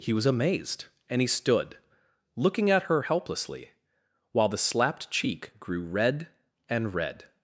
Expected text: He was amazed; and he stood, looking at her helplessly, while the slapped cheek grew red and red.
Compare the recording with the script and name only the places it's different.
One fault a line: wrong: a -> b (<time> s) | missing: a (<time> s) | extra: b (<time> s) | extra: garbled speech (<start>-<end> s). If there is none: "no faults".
no faults